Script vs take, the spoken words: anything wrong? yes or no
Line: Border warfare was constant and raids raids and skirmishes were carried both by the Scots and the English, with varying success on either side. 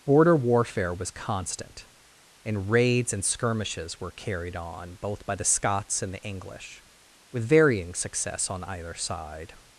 yes